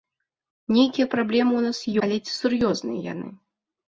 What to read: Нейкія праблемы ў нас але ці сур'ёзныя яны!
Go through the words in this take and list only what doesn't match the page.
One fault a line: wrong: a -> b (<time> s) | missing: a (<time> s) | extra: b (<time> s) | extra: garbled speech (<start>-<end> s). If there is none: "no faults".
no faults